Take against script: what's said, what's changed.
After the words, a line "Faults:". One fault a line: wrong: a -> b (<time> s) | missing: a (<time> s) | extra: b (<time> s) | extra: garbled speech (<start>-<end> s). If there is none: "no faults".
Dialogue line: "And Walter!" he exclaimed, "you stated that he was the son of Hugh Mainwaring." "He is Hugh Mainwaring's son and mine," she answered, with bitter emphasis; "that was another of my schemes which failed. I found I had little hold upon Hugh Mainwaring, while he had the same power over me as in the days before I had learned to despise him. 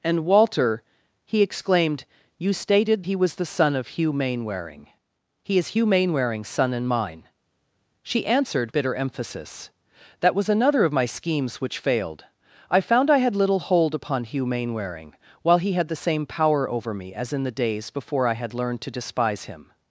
"And Walter!" he exclaimed, "you stated he was the son of Hugh Mainwaring." "He is Hugh Mainwaring's son and mine," she answered, bitter emphasis; "that was another of my schemes which failed. I found I had little hold upon Hugh Mainwaring, while he had the same power over me as in the days before I had learned to despise him.
Faults:
missing: that (3.0 s)
missing: with (8.7 s)